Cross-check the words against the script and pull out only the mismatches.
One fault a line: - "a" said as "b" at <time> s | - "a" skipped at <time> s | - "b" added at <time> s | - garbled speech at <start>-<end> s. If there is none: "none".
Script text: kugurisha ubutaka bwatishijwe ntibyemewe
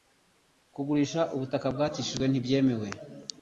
none